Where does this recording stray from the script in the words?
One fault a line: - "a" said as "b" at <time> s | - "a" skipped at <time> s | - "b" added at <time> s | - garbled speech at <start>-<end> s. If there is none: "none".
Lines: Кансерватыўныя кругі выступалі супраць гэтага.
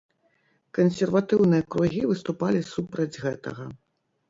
none